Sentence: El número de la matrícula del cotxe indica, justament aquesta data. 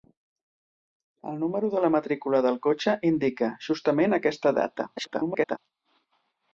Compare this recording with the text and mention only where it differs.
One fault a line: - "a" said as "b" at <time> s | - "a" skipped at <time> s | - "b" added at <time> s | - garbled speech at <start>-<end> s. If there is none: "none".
- garbled speech at 5.0-5.6 s